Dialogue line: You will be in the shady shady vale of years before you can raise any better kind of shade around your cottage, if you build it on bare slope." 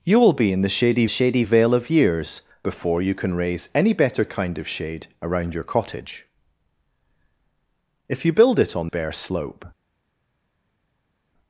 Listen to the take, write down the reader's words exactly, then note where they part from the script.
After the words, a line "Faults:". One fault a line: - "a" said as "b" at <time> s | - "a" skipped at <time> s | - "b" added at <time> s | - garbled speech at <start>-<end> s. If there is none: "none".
You will be in the shady shady vale of years before you can raise any better kind of shade around your cottage, if you build it on bare slope."
Faults:
none